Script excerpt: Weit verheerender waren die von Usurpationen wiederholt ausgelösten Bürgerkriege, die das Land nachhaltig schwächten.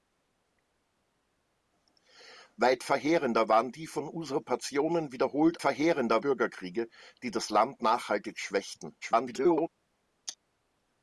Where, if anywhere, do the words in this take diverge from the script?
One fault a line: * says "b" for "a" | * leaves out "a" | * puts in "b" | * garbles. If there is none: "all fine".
* says "verheerender" for "ausgelösten"
* garbles